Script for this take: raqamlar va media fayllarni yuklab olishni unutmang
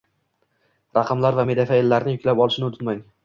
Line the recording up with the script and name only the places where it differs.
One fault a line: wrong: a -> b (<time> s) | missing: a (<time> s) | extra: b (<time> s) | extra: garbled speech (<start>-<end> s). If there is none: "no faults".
no faults